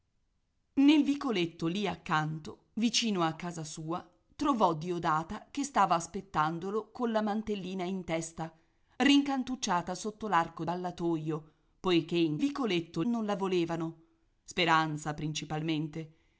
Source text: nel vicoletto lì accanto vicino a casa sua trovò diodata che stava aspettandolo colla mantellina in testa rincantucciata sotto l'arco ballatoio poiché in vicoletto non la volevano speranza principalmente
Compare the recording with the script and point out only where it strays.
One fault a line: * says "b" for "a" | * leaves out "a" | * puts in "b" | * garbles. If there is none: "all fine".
all fine